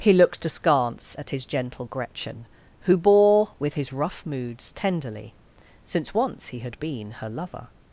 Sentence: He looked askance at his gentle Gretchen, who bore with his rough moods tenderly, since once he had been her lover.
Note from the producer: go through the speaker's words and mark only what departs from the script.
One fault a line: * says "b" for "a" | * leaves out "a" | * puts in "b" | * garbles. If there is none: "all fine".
all fine